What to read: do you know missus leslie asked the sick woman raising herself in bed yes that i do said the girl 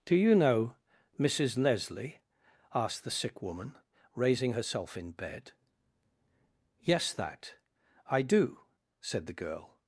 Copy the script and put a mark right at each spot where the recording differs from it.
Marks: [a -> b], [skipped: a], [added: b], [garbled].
do you know missus leslie asked the sick woman raising herself in bed yes that i do said the girl